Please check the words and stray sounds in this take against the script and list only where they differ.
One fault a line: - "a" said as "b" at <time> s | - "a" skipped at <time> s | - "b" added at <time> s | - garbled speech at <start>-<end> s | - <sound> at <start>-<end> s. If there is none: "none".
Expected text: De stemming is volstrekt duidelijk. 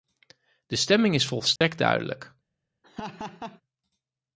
- dropout at 1.6-1.6 s
- laugh at 2.8-3.6 s